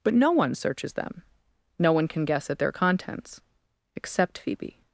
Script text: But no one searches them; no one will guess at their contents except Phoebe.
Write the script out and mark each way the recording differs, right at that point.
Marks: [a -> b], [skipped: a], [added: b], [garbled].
But no one searches them; no one [will -> can] guess at their contents except Phoebe.